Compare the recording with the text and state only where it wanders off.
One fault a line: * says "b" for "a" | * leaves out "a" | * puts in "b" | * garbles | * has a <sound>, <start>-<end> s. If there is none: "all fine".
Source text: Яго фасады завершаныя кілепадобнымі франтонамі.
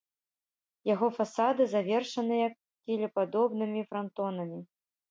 all fine